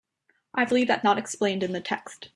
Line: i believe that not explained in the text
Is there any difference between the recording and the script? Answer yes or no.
no